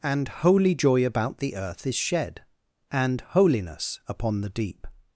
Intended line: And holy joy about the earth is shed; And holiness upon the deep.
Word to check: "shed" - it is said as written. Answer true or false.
true